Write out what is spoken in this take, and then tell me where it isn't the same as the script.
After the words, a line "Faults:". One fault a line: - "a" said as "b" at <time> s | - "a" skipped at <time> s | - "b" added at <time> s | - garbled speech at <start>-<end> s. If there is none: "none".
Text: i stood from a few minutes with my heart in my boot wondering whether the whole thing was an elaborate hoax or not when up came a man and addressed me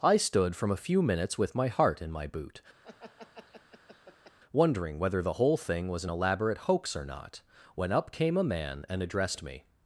i stood from a few minutes with my heart in my boot wondering whether the whole thing was an elaborate hoax or not when up came a man and addressed me
Faults:
none